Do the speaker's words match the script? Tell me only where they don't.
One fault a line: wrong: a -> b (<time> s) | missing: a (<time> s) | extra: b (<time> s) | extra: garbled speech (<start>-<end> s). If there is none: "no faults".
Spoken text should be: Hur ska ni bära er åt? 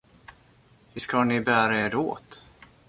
no faults